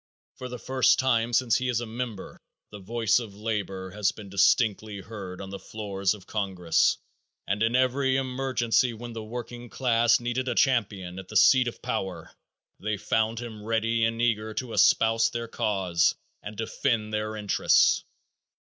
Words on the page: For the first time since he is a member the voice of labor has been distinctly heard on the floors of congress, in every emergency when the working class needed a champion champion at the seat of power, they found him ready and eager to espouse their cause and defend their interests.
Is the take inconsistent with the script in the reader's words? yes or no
yes